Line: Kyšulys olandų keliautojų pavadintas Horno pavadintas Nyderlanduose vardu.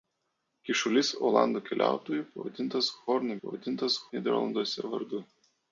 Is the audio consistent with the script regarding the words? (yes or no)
yes